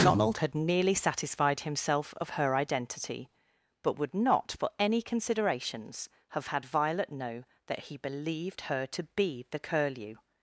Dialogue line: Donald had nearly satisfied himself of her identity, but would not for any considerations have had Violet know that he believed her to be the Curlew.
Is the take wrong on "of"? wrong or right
right